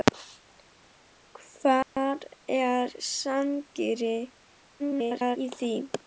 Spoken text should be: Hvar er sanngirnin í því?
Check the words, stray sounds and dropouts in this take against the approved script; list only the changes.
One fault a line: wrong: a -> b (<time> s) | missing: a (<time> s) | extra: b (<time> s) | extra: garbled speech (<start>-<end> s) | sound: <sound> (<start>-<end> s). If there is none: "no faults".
sound: dropout (1.8-2.0 s)
extra: garbled speech (4.8-5.4 s)